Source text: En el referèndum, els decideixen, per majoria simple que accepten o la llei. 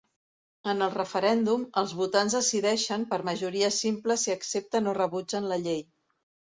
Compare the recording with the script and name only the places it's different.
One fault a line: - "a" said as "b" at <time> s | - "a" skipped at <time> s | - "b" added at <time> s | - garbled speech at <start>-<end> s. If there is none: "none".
- "votants" added at 2.0 s
- "que" said as "si" at 4.2 s
- "rebutgen" added at 5.0 s